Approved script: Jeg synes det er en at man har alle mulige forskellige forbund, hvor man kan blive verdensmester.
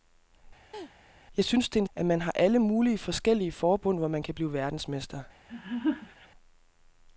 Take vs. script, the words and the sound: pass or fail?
fail